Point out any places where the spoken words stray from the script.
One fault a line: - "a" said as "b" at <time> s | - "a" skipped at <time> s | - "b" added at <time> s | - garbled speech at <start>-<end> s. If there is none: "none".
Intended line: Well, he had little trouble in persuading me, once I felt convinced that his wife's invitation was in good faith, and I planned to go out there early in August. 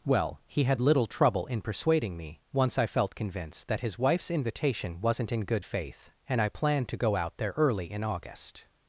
- "was" said as "wasn't" at 5.0 s